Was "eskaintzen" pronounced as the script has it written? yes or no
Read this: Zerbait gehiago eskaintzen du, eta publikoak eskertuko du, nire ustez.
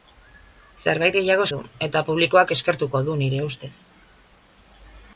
no